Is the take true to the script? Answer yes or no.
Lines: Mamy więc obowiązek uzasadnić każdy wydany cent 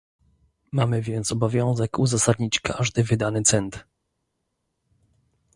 yes